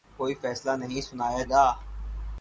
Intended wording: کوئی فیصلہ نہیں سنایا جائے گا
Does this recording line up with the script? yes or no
no